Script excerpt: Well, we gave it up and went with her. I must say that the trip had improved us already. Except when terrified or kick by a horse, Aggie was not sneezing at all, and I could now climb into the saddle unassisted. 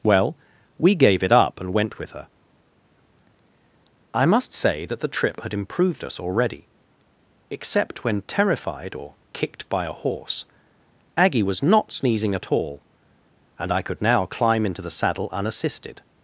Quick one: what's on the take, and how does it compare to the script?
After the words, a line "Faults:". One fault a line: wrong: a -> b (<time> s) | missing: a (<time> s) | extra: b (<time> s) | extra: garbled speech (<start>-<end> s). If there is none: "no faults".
Well, we gave it up and went with her. I must say that the trip had improved us already. Except when terrified or kicked by a horse, Aggie was not sneezing at all, and I could now climb into the saddle unassisted.
Faults:
wrong: kick -> kicked (9.3 s)